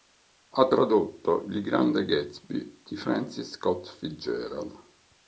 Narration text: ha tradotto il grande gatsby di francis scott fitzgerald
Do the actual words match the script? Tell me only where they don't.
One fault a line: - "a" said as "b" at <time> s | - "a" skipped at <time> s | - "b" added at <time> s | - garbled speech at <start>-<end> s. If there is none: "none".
none